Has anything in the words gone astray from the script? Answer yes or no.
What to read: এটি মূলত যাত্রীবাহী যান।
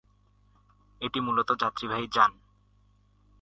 no